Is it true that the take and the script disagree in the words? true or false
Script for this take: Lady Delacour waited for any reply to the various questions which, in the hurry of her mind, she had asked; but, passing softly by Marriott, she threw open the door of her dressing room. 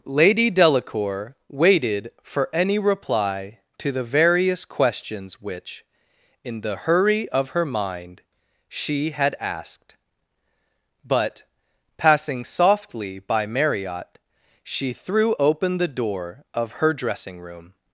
false